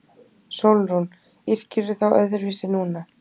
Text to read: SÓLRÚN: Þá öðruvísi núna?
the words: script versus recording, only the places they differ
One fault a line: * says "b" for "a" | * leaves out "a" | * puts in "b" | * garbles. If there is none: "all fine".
* puts in "Yrkirðu"